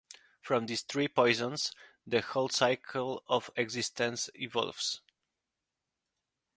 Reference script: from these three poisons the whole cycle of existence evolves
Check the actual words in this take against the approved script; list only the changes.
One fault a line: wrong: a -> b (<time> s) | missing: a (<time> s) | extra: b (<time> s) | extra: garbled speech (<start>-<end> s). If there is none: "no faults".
no faults